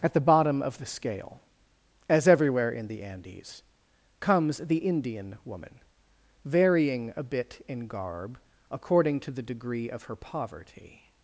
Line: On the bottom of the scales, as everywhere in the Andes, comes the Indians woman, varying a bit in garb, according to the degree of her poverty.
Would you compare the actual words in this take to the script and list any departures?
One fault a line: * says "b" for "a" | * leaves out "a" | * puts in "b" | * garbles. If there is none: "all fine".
* says "At" for "On"
* says "scale" for "scales"
* says "Indian" for "Indians"